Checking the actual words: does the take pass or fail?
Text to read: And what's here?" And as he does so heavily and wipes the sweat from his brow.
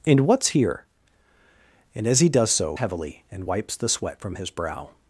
pass